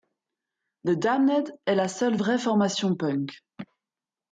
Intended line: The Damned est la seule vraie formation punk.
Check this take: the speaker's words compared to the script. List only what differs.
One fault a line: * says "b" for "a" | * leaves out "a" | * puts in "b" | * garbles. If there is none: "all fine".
all fine